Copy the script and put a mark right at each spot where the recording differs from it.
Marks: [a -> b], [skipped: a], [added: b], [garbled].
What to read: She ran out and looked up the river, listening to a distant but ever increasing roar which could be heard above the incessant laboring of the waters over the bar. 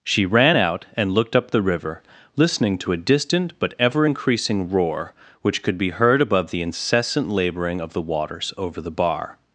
She ran out and looked up the river, listening to a distant but ever increasing roar which could be heard above the incessant laboring of the waters over the bar.